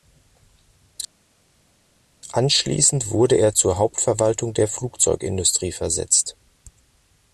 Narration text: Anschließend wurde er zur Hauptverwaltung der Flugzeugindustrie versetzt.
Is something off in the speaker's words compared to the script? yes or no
no